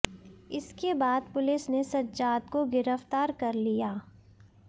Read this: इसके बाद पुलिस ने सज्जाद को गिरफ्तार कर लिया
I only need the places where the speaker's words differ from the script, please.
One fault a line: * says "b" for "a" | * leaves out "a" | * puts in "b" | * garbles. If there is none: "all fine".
all fine